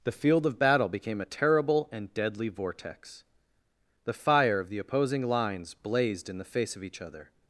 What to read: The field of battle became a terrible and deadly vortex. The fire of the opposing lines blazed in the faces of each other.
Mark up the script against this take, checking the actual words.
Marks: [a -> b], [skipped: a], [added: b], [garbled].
The field of battle became a terrible and deadly vortex. The fire of the opposing lines blazed in the [faces -> face] of each other.